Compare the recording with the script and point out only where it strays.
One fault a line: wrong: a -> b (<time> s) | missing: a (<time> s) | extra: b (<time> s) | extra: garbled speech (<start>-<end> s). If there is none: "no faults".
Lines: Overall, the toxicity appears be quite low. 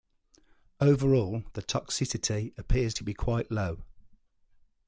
extra: to (2.9 s)